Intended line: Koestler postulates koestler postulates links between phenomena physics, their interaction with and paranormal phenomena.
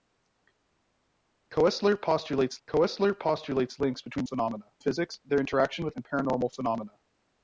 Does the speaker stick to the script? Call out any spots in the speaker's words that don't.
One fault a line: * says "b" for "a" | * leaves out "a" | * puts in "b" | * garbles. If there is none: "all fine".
all fine